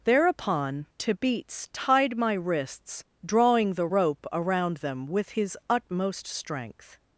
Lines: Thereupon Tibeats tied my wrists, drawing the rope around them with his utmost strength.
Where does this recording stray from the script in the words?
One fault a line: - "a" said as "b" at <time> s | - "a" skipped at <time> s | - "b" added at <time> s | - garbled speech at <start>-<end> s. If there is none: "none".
none